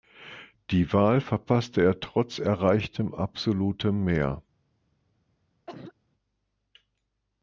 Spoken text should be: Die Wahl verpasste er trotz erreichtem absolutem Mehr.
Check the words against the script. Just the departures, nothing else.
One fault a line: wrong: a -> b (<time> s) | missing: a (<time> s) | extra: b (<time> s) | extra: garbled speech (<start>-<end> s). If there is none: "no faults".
no faults